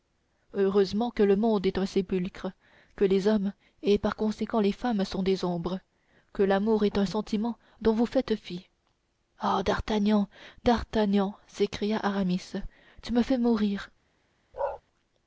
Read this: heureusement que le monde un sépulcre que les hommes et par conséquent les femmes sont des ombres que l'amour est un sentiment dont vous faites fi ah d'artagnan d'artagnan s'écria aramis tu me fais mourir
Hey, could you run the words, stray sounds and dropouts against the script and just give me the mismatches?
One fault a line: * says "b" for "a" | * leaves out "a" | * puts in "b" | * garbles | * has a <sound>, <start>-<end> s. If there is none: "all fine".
* puts in "est"
* has a bark, 14.5-14.8 s